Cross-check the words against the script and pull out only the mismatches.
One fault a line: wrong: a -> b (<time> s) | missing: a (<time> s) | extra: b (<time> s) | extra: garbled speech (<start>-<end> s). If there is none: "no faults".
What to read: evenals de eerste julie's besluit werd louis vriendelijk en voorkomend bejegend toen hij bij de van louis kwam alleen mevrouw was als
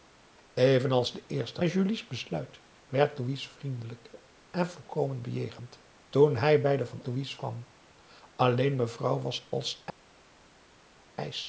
no faults